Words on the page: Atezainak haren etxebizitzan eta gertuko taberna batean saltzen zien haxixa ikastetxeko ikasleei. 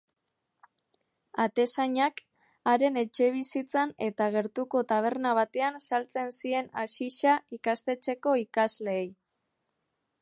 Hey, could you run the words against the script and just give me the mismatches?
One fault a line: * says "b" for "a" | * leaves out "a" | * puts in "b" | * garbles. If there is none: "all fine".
all fine